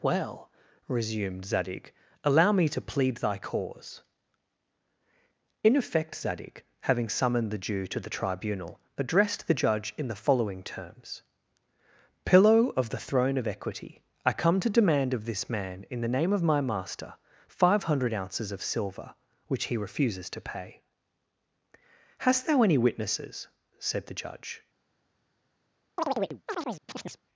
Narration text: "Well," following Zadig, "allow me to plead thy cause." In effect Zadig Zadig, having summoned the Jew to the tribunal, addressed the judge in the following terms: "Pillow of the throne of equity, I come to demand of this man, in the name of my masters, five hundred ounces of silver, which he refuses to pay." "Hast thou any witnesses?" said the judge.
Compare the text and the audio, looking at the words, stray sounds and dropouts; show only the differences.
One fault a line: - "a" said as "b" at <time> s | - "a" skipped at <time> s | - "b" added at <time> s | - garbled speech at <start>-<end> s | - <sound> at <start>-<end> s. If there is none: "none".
- "following" said as "resumed" at 0.9 s
- "Zadig" skipped at 6.6 s
- "masters" said as "master" at 16.6 s
- chirp at 26.0-27.2 s